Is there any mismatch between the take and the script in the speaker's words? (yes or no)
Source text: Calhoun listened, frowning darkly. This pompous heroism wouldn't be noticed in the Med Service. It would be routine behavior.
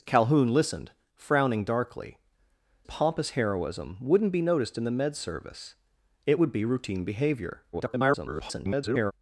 yes